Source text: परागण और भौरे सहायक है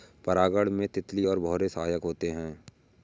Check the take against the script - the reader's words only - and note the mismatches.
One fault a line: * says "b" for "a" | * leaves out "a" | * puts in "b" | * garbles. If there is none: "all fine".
* puts in "में तितली"
* puts in "होते"